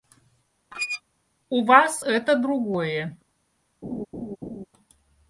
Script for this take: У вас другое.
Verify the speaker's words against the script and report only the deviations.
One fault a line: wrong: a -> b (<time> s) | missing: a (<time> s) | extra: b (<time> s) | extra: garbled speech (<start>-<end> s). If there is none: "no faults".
extra: это (2.0 s)